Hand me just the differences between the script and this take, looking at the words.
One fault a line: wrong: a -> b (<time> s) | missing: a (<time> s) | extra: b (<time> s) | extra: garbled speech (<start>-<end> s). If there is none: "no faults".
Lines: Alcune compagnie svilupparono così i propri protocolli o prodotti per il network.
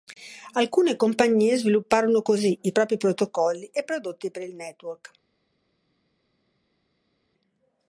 wrong: o -> e (3.6 s)